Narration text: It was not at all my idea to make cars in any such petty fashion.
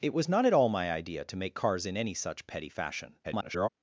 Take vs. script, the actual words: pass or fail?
fail